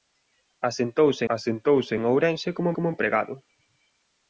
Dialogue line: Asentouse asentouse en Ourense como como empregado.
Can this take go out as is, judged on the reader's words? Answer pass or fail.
pass